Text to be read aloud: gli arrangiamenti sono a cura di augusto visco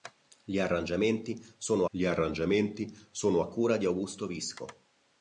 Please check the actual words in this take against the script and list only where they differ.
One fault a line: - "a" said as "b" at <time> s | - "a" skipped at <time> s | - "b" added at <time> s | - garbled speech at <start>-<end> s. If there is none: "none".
- "gli arrangiamenti sono" added at 1.9 s